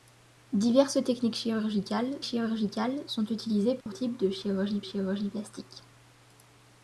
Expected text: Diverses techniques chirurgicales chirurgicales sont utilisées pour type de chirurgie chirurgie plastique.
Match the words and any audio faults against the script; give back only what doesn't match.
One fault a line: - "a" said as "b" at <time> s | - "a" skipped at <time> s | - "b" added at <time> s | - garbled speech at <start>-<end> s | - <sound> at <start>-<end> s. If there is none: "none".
- dropout at 3.8-3.9 s